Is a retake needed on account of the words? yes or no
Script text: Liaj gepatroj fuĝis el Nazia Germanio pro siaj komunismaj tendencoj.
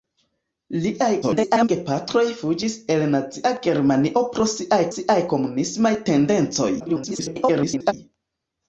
yes